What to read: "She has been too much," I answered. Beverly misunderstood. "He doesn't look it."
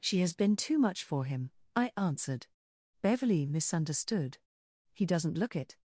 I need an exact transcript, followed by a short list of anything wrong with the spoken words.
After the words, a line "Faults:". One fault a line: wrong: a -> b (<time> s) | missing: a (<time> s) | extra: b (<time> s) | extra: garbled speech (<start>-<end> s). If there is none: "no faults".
"She has been too much for him," I answered. Beverly misunderstood. "He doesn't look it."
Faults:
extra: for him (1.0 s)